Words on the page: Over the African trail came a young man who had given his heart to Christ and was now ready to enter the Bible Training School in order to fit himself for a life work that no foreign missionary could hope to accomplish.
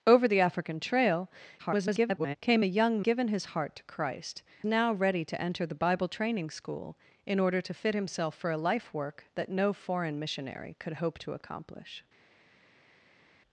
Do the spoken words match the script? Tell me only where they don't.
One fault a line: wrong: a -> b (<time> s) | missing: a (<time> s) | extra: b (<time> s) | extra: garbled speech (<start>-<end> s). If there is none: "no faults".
extra: garbled speech (1.6-2.4 s)
missing: man who had (3.0 s)
missing: and was (4.4 s)